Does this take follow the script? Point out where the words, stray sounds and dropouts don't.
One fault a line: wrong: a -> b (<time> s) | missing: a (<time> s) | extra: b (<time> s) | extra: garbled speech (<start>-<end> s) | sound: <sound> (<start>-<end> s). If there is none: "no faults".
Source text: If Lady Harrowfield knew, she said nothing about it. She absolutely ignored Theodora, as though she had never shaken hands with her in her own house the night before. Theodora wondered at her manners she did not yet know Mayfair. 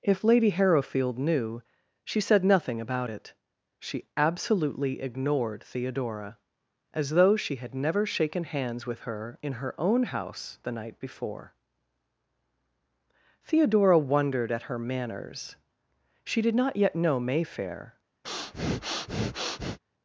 sound: breath (18.2-19.8 s)